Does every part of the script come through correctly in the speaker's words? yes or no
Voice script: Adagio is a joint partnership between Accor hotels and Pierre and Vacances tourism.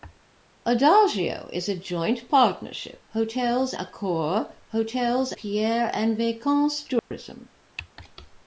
no